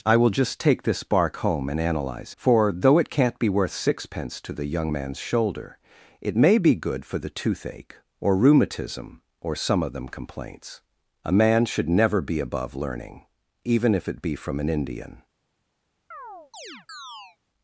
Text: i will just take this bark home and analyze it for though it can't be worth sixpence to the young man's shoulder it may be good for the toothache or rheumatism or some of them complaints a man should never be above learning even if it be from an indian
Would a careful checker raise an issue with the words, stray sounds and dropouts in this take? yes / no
yes